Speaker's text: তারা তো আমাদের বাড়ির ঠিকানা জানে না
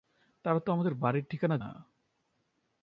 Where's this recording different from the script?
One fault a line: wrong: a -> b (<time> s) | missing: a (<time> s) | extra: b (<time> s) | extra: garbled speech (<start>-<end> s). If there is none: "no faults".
missing: জানে (1.6 s)